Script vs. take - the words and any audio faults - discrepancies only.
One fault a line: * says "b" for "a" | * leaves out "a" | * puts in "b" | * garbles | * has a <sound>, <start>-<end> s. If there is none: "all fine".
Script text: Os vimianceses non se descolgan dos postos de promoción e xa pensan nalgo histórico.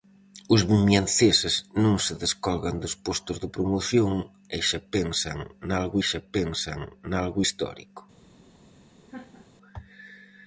* puts in "xa pensan nalgo"
* has a laugh, 9.1-9.5 s